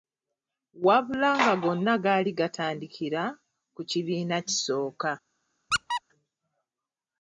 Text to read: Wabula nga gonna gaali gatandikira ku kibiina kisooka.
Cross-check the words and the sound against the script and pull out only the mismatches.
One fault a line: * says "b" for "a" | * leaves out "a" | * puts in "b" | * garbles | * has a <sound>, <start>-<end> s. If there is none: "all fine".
* has a squeak, 5.7-6.0 s